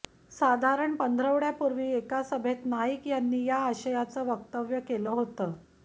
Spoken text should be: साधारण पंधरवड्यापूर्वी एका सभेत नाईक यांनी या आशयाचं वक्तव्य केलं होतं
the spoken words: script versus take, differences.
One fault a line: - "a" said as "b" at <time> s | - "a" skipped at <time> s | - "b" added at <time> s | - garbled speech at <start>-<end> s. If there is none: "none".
none